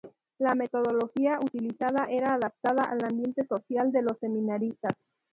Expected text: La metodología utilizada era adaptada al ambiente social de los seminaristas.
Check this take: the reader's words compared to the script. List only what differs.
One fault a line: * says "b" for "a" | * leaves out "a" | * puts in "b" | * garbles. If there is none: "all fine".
all fine